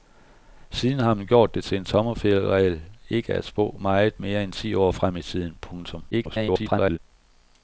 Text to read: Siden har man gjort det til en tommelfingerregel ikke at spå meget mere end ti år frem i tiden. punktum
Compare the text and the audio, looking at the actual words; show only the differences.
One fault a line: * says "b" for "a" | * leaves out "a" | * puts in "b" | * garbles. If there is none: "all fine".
* garbles